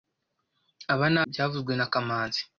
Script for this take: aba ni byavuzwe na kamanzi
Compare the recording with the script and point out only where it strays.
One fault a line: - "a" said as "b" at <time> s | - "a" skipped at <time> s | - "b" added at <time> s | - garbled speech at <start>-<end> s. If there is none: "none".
none